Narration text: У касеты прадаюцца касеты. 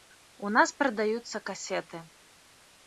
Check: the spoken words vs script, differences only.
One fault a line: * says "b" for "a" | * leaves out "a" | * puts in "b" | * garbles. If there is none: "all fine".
* says "нас" for "касеты"